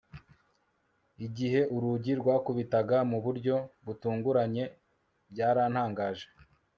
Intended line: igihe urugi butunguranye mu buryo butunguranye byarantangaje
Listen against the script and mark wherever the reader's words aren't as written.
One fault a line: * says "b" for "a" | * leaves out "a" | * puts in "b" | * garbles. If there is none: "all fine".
* says "rwakubitaga" for "butunguranye"